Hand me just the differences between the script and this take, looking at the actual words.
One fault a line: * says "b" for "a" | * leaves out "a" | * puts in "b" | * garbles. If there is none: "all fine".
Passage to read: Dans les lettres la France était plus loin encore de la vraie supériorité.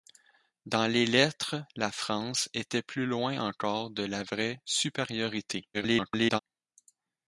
* garbles